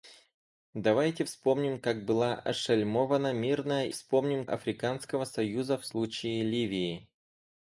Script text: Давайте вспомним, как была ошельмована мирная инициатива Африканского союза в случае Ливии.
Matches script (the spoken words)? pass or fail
fail